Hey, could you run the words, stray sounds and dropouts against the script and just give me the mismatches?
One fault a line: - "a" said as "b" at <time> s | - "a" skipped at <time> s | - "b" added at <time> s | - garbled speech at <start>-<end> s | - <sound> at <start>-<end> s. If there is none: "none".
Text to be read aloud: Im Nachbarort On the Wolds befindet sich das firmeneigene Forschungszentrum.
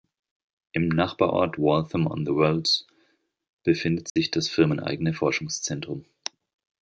- "Waltham" added at 1.6 s
- dropout at 4.1-4.2 s